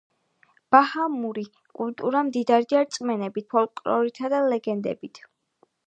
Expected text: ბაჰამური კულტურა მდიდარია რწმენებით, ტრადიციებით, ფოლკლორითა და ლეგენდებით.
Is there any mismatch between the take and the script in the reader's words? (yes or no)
yes